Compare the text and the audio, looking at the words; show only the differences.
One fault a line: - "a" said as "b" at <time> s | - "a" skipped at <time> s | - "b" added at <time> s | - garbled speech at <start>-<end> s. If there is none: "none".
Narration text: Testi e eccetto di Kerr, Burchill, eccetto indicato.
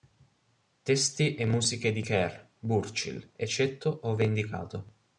- "eccetto" said as "musiche" at 1.4 s
- "ove" added at 4.0 s